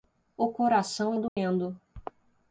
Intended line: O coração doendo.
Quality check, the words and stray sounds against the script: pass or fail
fail